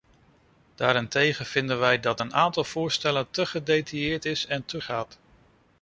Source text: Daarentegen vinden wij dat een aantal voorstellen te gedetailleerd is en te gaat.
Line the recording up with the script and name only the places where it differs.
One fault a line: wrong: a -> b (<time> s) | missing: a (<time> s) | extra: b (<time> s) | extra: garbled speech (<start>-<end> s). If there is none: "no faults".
no faults